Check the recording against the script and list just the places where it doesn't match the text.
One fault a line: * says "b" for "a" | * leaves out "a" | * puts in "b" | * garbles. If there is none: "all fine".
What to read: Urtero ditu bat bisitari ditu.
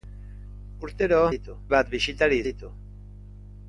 all fine